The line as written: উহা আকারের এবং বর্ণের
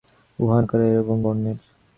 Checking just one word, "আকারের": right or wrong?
right